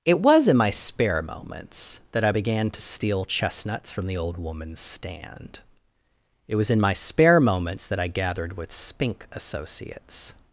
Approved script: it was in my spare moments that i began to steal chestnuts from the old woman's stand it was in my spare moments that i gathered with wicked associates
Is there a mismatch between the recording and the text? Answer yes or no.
yes